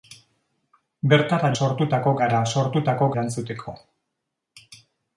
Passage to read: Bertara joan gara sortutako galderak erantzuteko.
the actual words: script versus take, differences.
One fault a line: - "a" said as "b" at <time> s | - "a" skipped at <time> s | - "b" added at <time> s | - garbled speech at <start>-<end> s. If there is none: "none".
- "joan" said as "sortutako" at 1.6 s
- "galderak" skipped at 3.1 s